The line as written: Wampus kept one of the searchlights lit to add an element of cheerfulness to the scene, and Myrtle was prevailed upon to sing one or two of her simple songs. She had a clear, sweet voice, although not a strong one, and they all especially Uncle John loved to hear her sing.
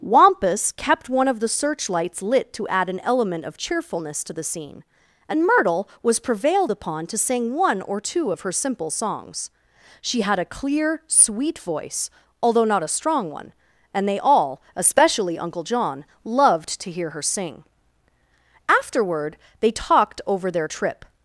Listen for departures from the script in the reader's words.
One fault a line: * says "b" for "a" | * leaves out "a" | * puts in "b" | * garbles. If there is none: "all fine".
* puts in "Afterward they talked over their trip"